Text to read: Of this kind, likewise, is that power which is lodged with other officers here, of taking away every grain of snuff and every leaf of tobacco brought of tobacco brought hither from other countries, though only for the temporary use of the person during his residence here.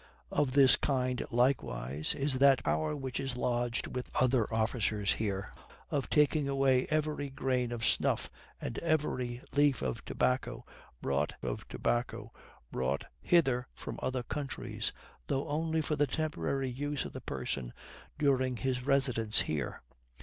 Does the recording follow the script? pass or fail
pass